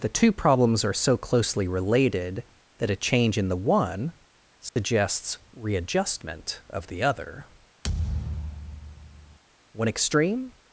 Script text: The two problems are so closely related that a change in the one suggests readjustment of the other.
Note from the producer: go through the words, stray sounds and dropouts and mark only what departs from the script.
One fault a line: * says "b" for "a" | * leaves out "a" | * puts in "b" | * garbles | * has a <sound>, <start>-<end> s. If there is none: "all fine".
* has a dropout, 4.7-4.8 s
* has a thud, 7.8-9.4 s
* puts in "One extreme"